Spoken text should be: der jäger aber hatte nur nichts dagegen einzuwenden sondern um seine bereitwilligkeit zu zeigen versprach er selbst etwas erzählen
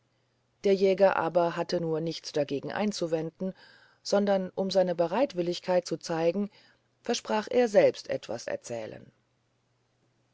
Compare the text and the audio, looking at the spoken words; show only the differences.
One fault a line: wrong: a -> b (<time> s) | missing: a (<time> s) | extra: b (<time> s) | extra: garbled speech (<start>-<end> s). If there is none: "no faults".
no faults